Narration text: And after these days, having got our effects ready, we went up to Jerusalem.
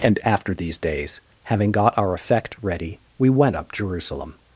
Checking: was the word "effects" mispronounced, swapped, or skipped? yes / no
yes